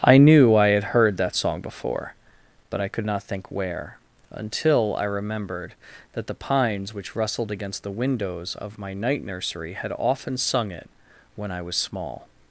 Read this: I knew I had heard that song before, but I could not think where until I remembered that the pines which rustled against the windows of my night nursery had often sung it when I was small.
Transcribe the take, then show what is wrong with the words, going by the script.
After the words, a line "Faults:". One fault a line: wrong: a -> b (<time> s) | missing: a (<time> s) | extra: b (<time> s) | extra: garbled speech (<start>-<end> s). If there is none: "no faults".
I knew I had heard that song before, but I could not think where until I remembered that the pines which rustled against the windows of my night nursery had often sung it when I was small.
Faults:
no faults